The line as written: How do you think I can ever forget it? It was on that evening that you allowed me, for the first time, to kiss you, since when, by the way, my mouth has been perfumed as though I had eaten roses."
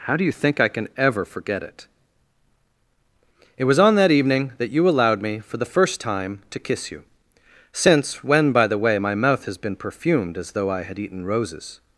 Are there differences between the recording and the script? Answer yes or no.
no